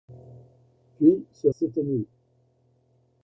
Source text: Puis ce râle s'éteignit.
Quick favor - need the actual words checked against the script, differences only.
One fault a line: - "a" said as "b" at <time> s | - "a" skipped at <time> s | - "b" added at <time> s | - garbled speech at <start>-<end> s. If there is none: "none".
- "râle" skipped at 1.5 s